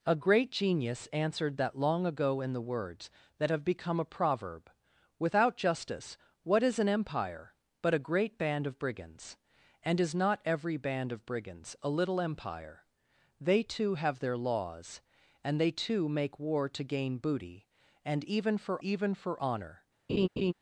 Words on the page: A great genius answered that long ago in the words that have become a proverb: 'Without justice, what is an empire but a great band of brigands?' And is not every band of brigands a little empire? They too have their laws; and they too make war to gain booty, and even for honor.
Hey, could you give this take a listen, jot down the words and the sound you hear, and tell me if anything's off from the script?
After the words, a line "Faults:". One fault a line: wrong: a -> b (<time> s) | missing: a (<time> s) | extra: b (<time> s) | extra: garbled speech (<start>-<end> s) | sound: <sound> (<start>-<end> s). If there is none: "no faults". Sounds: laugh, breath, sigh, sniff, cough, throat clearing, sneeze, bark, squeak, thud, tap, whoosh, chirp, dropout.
A great genius answered that long ago in the words that have become a proverb: 'Without justice, what is an empire but a great band of brigands?' And is not every band of brigands a little empire? They too have their laws; and they too make war to gain booty, and even for even for honor.
Faults:
extra: even for (18.8 s)
sound: laugh (20.1-20.5 s)